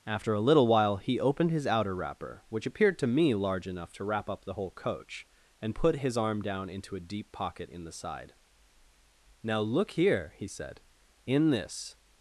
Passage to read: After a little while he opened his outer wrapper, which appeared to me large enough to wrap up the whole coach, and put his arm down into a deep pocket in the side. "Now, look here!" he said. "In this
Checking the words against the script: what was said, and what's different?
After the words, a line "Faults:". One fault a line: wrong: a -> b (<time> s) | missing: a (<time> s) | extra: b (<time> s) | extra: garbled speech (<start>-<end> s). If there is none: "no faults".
After a little while he opened his outer wrapper, which appeared to me large enough to wrap up the whole coach, and put his arm down into a deep pocket in the side. "Now, look here!" he said. "In this
Faults:
no faults